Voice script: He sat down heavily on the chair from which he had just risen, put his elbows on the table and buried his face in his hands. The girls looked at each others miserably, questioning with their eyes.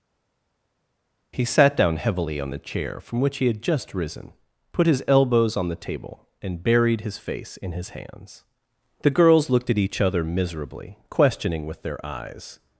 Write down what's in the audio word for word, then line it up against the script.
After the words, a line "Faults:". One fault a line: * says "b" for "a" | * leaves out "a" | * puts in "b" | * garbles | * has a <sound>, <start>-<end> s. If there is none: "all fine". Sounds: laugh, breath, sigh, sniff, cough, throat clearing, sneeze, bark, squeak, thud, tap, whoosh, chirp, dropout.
He sat down heavily on the chair from which he had just risen, put his elbows on the table and buried his face in his hands. The girls looked at each other miserably, questioning with their eyes.
Faults:
* says "other" for "others"